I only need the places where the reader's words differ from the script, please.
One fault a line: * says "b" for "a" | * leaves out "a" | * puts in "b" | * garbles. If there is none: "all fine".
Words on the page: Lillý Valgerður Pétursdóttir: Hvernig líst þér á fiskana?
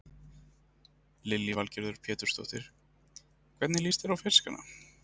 all fine